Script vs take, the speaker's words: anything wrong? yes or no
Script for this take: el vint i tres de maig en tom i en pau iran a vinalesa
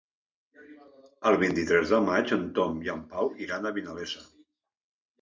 no